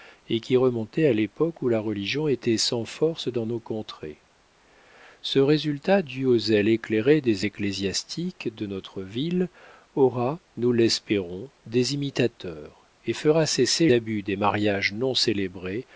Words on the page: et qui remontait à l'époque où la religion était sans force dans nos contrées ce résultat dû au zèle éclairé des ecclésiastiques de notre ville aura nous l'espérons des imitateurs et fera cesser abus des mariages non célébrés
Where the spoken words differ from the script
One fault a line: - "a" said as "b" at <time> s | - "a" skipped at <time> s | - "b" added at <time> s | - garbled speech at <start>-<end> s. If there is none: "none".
none